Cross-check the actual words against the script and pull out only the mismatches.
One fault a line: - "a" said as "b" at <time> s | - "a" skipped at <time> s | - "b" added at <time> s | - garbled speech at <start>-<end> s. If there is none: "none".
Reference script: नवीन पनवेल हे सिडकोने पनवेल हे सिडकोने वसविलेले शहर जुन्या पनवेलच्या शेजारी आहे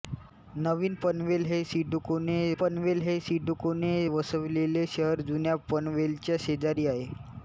none